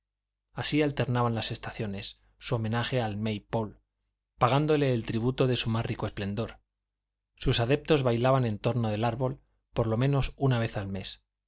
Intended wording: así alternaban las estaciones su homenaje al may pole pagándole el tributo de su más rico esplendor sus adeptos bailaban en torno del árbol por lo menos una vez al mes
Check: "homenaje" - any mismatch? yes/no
no